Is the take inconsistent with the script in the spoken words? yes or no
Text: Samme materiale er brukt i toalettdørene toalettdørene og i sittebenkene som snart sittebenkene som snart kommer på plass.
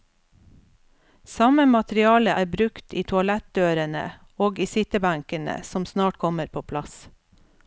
yes